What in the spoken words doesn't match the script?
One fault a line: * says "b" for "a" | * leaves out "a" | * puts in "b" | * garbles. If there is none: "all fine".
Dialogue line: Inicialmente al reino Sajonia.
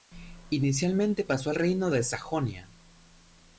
* puts in "pasó"
* puts in "de"